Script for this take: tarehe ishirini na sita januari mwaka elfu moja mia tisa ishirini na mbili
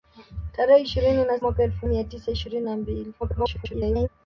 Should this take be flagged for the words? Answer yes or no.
yes